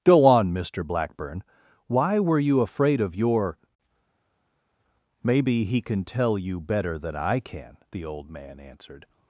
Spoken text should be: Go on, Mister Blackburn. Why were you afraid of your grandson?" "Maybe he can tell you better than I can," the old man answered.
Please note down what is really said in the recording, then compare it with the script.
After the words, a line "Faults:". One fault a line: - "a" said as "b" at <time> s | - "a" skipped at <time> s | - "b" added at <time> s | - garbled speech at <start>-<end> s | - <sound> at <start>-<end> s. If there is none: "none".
Go on, Mister Blackburn. Why were you afraid of your?" "Maybe he can tell you better than I can," the old man answered.
Faults:
- "grandson" skipped at 3.6 s